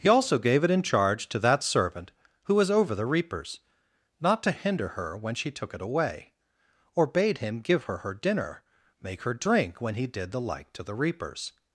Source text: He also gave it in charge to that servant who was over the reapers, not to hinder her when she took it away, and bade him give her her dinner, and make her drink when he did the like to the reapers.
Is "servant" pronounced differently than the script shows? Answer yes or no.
no